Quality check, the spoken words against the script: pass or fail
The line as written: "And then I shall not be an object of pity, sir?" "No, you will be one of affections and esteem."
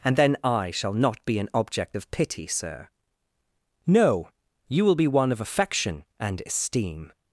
fail